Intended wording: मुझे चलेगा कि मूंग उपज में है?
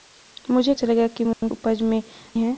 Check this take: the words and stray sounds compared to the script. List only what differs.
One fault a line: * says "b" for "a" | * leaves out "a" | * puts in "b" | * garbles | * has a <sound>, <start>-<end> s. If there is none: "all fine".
* has a dropout, 1.3-1.4 s